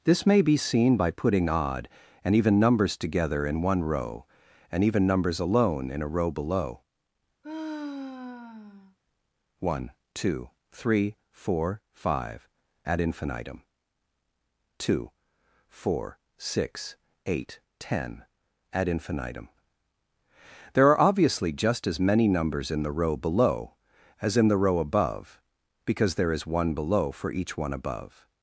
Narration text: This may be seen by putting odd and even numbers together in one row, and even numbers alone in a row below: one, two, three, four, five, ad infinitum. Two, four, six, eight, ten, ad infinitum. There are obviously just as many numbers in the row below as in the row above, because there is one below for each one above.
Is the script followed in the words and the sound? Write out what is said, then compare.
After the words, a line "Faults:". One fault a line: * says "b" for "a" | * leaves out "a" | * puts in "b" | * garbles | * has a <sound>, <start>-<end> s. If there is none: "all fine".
This may be seen by putting odd and even numbers together in one row, and even numbers alone in a row below: one, two, three, four, five, ad infinitum. Two, four, six, eight, ten, ad infinitum. There are obviously just as many numbers in the row below as in the row above, because there is one below for each one above.
Faults:
* has a sigh, 7.4-9.0 s